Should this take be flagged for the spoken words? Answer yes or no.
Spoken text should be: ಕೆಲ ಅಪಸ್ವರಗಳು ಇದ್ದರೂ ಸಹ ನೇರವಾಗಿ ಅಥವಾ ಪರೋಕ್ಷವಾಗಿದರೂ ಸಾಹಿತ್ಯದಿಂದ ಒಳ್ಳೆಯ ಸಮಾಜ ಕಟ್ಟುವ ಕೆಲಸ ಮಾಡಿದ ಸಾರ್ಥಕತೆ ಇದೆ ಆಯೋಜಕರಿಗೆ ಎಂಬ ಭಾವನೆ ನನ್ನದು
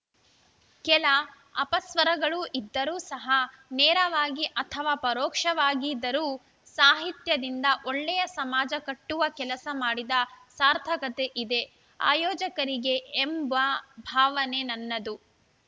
no